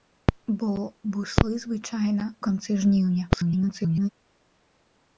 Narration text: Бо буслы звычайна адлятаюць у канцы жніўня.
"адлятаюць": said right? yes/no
no